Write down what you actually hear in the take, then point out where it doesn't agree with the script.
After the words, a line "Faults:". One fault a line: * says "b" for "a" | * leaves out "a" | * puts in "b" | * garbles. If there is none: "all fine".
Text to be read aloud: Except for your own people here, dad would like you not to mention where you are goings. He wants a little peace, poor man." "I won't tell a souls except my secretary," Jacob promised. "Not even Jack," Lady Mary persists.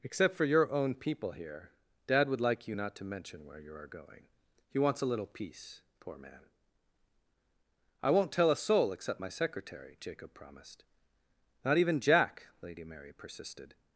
Except for your own people here, dad would like you not to mention where you are going. He wants a little peace, poor man." "I won't tell a soul except my secretary," Jacob promised. "Not even Jack," Lady Mary persisted.
Faults:
* says "going" for "goings"
* says "soul" for "souls"
* says "persisted" for "persists"